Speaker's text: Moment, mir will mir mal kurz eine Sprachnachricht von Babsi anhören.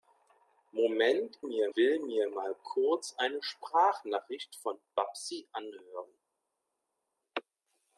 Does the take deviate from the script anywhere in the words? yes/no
no